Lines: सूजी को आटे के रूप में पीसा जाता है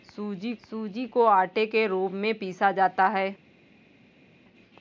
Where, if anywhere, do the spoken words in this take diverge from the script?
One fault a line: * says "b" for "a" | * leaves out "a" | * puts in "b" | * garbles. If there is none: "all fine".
* puts in "सूजी"